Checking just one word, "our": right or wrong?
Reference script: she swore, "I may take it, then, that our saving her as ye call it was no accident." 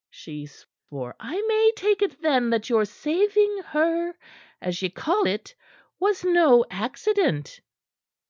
wrong